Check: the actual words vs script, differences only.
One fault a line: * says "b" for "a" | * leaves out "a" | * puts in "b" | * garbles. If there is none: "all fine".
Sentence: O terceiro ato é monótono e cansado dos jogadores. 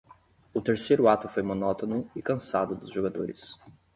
* says "foi" for "é"